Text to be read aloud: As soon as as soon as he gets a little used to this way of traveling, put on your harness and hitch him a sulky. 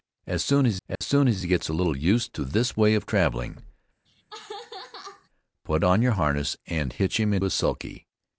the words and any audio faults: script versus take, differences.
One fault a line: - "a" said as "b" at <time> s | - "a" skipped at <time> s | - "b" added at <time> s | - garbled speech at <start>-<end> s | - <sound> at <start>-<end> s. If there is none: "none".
- dropout at 1.0-1.0 s
- laugh at 4.1-5.3 s